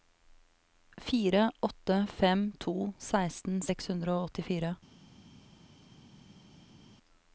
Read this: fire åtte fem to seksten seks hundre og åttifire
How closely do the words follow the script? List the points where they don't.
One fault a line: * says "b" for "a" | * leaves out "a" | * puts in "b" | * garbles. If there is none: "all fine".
all fine